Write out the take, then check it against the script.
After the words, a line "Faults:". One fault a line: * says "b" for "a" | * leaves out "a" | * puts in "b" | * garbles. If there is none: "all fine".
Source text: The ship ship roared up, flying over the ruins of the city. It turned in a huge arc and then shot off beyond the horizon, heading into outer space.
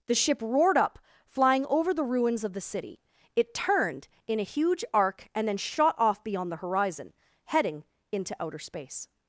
The ship roared up, flying over the ruins of the city. It turned in a huge arc and then shot off beyond the horizon, heading into outer space.
Faults:
* leaves out "ship"